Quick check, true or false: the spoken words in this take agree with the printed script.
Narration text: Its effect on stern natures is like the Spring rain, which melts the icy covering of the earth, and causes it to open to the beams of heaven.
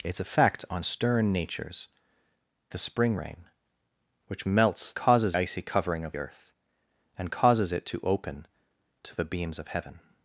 false